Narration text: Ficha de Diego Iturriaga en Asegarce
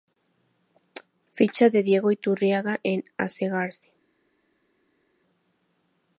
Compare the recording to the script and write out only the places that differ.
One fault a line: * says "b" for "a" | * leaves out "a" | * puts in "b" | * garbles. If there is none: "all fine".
all fine